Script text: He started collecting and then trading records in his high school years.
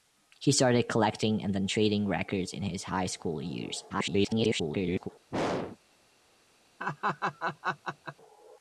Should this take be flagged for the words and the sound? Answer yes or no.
yes